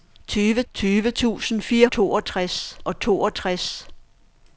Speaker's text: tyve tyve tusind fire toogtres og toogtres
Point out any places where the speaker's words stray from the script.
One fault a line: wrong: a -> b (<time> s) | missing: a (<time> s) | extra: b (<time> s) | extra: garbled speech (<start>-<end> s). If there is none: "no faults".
no faults